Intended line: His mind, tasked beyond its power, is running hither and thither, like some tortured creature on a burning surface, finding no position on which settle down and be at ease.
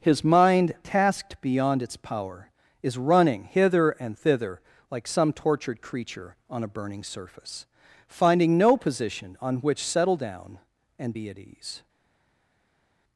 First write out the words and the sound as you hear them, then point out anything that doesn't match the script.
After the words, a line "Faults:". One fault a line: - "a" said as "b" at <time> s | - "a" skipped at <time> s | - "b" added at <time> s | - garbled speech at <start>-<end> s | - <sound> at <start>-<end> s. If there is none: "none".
His mind, tasked beyond its power, is running hither and thither, like some tortured creature on a burning surface, finding no position on which settle down and be at ease.
Faults:
none